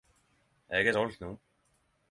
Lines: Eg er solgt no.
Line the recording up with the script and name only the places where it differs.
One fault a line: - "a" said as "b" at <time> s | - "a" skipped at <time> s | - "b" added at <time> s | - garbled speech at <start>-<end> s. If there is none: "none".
none